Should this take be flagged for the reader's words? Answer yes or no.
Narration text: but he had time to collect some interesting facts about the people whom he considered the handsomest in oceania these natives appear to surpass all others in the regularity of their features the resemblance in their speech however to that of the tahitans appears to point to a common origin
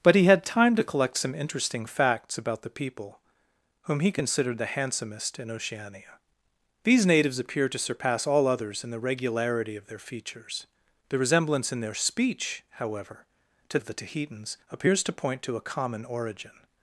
yes